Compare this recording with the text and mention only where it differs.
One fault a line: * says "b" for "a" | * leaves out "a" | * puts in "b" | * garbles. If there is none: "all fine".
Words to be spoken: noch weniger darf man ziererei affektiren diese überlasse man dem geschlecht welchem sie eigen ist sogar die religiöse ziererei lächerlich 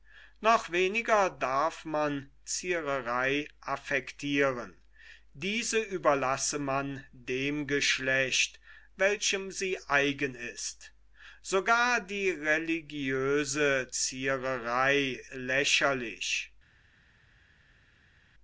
all fine